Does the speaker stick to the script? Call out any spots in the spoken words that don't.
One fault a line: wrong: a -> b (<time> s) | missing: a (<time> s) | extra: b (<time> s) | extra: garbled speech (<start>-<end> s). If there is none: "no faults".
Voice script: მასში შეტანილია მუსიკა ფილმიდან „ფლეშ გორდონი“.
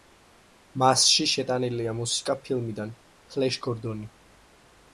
no faults